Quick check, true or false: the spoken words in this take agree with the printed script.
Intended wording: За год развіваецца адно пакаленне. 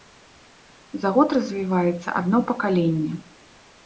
true